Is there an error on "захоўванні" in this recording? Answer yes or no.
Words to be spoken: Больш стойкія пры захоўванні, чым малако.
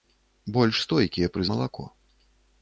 yes